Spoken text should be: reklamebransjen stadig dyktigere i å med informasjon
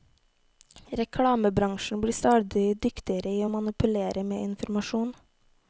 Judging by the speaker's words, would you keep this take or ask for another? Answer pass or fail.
fail